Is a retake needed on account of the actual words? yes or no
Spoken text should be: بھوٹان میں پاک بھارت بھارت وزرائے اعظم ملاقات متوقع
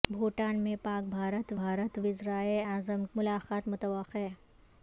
no